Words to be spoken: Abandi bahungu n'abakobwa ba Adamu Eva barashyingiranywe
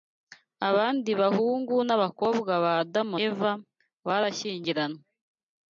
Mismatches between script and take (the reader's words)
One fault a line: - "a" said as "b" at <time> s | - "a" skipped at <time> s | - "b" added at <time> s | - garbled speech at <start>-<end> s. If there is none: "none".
none